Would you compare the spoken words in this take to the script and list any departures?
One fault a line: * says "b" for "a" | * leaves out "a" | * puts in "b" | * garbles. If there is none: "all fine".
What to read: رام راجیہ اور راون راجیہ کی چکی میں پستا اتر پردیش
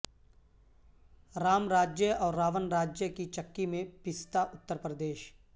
all fine